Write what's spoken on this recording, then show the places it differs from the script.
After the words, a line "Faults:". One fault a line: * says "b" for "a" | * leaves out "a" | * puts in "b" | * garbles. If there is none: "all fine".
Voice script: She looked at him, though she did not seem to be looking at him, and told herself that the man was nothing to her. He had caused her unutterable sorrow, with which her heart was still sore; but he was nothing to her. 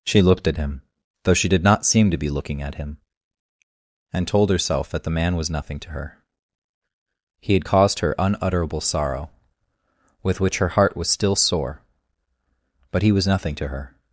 She looked at him, though she did not seem to be looking at him, and told herself that the man was nothing to her. He had caused her unutterable sorrow, with which her heart was still sore; but he was nothing to her.
Faults:
all fine